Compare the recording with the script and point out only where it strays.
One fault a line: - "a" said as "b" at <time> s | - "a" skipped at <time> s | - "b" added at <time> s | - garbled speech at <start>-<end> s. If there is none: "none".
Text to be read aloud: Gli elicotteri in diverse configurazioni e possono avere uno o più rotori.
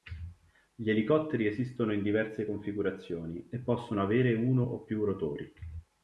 - "esistono" added at 1.4 s